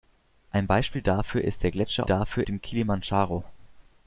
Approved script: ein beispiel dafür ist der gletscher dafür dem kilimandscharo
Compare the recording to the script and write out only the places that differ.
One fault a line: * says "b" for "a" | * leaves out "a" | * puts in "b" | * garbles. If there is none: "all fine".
all fine